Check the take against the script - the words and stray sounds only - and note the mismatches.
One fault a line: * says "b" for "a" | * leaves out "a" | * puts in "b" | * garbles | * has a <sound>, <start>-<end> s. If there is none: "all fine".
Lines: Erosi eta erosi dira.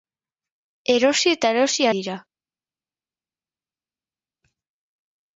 all fine